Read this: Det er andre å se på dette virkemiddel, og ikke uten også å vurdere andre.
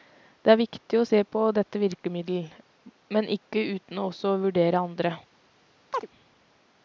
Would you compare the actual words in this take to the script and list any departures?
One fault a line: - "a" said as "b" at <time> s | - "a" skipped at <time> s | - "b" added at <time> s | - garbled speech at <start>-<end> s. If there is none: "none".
- "andre" said as "viktig" at 0.6 s
- "og" said as "men" at 3.2 s